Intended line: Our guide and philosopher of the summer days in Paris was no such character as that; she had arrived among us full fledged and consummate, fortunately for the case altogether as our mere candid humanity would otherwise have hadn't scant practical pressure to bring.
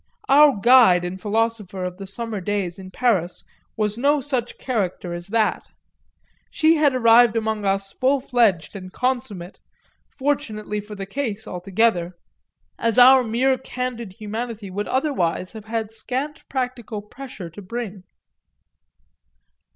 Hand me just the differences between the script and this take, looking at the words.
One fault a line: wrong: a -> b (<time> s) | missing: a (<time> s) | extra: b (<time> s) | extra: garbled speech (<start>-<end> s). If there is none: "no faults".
wrong: hadn't -> had (15.7 s)